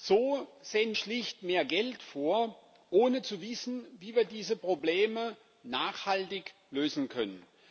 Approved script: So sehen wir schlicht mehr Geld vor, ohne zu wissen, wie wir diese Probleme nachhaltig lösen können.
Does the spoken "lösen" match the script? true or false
true